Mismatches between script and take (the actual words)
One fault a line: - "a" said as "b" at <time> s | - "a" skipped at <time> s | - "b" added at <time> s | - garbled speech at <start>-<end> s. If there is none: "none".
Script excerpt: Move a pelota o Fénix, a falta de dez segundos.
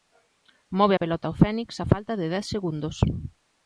none